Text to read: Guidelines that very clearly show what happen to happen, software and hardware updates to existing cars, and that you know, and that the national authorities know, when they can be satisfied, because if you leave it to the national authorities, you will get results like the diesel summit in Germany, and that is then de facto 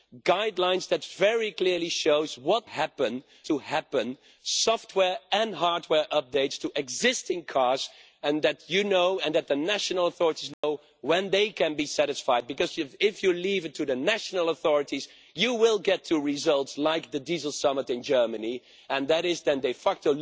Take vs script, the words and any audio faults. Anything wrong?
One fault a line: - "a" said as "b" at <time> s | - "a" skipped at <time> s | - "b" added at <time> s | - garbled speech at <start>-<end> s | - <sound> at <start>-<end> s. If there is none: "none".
- dropout at 10.5-10.6 s